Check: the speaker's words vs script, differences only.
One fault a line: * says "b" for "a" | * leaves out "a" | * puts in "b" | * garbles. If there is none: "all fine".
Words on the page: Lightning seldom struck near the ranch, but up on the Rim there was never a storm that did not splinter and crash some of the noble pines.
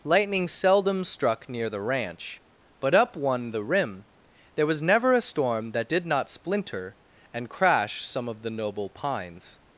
* says "one" for "on"